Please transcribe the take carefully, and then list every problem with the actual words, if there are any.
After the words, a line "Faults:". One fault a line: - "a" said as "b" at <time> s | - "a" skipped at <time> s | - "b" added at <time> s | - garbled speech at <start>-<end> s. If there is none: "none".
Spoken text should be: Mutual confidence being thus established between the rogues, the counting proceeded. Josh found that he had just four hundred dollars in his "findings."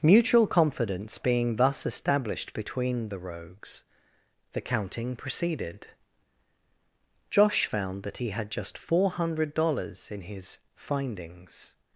Mutual confidence being thus established between the rogues, the counting proceeded. Josh found that he had just four hundred dollars in his "findings."
Faults:
none